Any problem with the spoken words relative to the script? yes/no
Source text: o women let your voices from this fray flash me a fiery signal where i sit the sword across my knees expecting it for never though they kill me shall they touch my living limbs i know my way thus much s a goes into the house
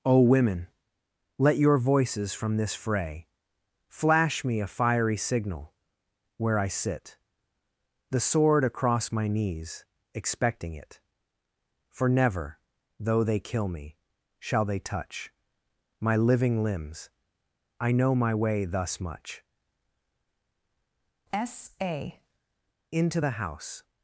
yes